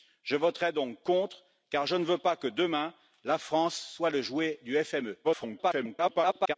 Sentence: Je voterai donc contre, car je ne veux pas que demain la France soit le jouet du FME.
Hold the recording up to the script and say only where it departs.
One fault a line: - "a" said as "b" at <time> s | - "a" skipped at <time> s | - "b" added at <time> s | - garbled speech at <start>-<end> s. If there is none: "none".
- garbled speech at 5.2-6.5 s